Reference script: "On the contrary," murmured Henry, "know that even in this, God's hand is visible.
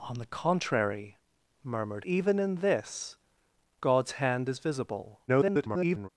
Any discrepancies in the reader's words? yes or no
yes